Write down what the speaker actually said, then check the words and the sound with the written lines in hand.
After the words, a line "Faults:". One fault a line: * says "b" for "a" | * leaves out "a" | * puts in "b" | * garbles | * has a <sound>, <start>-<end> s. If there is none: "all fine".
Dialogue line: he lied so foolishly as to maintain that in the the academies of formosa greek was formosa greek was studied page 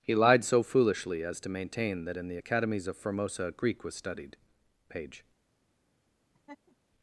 he lied so foolishly as to maintain that in the academies of formosa greek was studied page
Faults:
* leaves out "the"
* leaves out "formosa greek was"
* has a laugh, 6.3-6.8 s